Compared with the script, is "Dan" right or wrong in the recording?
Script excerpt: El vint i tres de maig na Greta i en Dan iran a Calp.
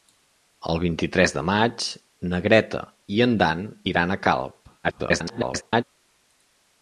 right